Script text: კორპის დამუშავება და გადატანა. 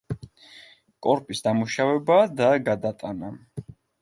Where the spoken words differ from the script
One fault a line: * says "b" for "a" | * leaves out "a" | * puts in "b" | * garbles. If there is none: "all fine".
all fine